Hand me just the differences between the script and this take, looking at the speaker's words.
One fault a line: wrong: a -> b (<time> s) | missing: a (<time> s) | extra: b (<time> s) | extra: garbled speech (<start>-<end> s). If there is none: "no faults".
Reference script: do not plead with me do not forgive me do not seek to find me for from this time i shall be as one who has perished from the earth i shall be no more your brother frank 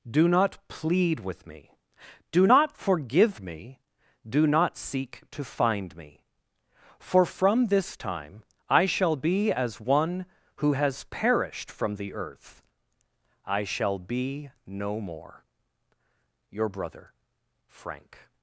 no faults